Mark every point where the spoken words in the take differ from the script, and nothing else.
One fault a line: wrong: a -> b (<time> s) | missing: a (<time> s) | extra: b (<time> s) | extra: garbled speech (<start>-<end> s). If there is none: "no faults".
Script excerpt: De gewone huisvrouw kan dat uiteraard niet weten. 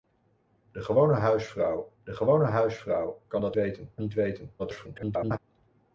extra: de gewone huisvrouw (2.0 s)
wrong: uiteraard -> weten (3.5 s)
extra: garbled speech (4.6-5.4 s)